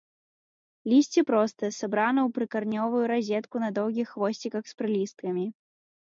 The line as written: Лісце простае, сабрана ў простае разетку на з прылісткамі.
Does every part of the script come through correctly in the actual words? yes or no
no